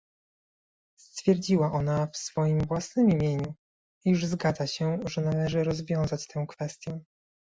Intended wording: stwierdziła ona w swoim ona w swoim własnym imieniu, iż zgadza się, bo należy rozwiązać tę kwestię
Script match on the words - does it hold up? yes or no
no